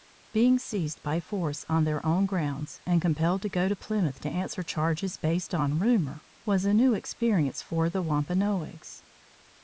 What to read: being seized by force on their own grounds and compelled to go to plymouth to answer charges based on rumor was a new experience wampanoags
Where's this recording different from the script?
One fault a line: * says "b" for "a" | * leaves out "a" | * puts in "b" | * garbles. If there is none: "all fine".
* puts in "for the"